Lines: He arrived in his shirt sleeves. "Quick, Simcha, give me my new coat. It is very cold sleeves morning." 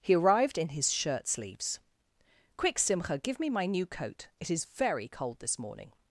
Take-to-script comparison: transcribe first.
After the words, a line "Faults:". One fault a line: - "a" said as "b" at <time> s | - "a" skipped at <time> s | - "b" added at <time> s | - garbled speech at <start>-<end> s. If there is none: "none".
He arrived in his shirt sleeves. "Quick, Simcha, give me my new coat. It is very cold this morning."
Faults:
- "sleeves" said as "this" at 5.4 s